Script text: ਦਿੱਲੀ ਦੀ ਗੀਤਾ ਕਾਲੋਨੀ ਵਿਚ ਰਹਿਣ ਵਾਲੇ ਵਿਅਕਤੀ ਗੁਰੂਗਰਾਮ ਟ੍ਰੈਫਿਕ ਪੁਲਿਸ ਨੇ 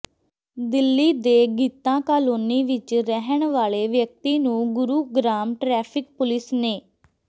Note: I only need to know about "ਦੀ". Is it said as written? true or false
false